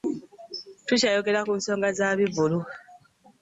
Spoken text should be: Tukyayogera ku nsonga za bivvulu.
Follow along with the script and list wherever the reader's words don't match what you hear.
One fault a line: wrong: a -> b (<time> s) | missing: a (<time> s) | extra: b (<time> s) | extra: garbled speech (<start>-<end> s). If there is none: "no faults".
no faults